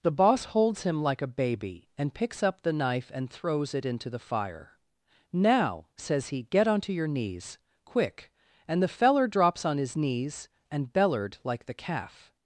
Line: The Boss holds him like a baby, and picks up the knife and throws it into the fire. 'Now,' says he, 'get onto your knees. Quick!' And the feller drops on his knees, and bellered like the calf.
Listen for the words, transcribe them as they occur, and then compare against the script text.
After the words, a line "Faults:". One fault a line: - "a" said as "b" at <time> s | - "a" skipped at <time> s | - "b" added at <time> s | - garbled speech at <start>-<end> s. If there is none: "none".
The Boss holds him like a baby, and picks up the knife and throws it into the fire. 'Now,' says he, 'get onto your knees. Quick!' And the feller drops on his knees, and bellered like the calf.
Faults:
none